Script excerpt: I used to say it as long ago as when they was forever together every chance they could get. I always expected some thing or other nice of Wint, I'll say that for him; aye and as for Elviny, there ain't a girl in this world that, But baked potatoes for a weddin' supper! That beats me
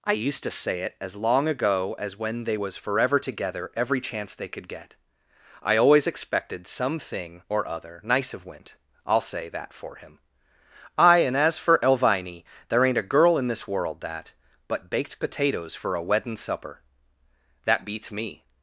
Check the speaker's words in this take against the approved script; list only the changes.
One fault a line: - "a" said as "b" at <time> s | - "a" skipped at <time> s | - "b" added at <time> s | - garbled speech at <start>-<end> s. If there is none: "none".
none